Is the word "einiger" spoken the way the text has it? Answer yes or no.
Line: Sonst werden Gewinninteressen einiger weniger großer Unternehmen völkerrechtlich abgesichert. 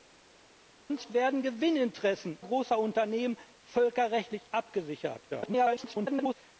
no